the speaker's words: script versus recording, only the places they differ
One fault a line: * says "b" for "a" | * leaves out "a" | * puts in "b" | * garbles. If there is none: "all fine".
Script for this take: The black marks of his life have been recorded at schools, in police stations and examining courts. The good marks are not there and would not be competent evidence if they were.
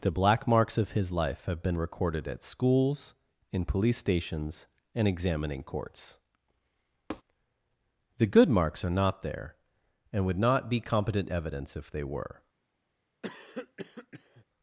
all fine